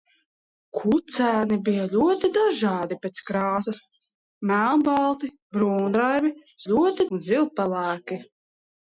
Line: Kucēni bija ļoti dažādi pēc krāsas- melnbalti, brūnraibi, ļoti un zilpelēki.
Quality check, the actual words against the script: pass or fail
pass